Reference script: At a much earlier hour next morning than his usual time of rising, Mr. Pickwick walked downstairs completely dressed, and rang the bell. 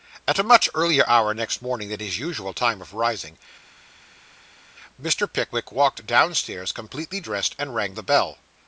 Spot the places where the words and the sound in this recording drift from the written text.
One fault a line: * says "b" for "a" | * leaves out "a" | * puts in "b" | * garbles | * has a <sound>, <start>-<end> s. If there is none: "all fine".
all fine